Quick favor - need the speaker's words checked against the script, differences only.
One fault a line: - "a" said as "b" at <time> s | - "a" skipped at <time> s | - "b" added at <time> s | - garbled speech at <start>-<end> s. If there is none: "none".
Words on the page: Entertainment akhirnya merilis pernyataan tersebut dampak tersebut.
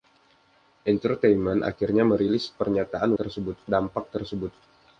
none